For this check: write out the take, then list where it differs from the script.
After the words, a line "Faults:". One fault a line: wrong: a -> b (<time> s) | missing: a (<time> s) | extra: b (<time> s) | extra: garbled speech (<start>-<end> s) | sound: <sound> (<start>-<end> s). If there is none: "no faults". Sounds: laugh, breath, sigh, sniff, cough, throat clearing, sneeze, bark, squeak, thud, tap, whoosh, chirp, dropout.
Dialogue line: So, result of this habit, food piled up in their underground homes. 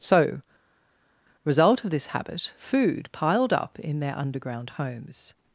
So, result of this habit, food piled up in their underground homes.
Faults:
no faults